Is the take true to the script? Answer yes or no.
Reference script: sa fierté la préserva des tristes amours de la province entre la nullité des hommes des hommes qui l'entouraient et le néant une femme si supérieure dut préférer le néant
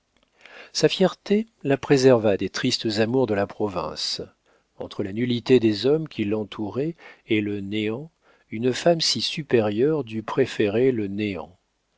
no